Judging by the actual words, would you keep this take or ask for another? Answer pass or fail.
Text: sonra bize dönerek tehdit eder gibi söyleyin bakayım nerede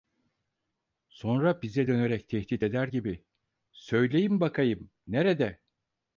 pass